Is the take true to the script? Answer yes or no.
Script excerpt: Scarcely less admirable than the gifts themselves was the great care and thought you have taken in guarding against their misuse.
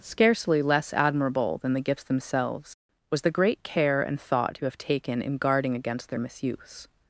yes